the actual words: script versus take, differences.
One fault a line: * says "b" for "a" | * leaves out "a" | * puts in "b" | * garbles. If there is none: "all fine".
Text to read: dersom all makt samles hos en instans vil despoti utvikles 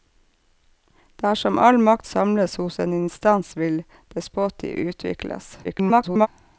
* garbles